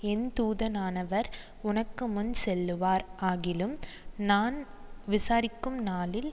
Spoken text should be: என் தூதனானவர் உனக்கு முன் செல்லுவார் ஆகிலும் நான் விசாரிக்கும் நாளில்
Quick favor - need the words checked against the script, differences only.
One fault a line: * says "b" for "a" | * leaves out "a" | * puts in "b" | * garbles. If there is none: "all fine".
all fine